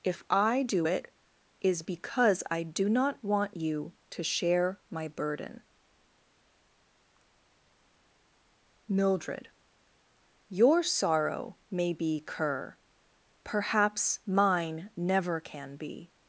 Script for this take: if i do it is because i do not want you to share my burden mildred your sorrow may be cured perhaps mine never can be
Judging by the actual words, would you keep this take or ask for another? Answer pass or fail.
fail